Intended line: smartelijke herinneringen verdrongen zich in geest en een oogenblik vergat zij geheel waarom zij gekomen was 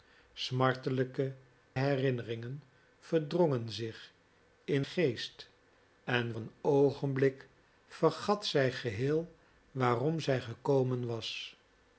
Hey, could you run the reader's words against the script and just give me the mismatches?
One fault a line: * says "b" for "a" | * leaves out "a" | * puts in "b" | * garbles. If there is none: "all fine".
all fine